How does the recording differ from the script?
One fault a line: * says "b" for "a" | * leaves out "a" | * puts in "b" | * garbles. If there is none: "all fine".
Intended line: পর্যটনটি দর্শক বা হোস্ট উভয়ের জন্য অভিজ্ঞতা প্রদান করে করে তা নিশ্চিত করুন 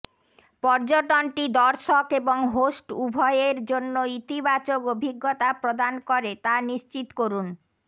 * says "এবং" for "বা"
* puts in "ইতিবাচক"
* leaves out "করে"